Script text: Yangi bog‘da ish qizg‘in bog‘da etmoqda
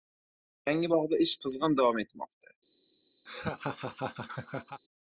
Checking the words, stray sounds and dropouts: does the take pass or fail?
fail